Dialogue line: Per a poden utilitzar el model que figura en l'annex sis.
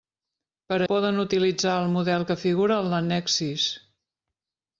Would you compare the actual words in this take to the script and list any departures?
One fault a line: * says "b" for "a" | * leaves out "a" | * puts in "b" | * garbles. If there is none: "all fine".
all fine